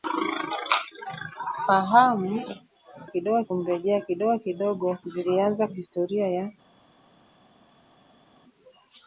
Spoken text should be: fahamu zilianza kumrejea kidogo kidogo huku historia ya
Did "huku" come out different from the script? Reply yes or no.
yes